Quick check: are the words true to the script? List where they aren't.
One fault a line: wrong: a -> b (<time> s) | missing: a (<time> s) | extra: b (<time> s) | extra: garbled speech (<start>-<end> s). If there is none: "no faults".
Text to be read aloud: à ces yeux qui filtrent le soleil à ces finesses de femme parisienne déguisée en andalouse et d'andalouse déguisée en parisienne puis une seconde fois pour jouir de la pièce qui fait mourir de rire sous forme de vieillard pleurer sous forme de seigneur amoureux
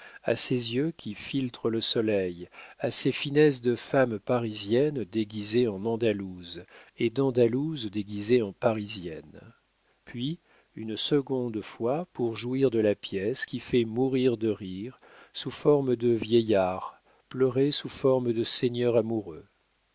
no faults